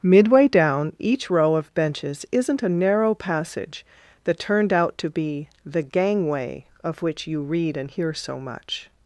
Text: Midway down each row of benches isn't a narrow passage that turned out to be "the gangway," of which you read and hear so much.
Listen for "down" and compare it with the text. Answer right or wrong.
right